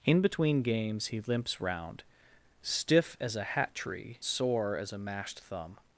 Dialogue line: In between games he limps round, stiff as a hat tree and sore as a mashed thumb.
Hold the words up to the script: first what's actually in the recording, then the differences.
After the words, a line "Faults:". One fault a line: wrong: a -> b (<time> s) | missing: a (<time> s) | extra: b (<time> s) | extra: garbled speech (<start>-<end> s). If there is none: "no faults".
In between games he limps round, stiff as a hat tree sore as a mashed thumb.
Faults:
missing: and (4.2 s)